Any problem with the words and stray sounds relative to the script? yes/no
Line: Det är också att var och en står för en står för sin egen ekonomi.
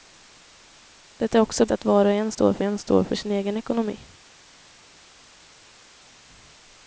no